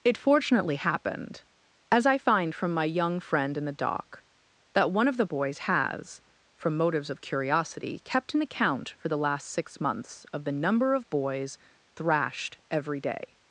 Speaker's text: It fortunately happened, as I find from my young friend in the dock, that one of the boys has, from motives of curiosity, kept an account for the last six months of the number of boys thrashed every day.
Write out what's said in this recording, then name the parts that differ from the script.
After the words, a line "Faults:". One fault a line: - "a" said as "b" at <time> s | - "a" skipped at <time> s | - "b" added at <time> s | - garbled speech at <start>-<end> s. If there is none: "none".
It fortunately happened, as I find from my young friend in the dock, that one of the boys has, from motives of curiosity, kept an account for the last six months of the number of boys thrashed every day.
Faults:
none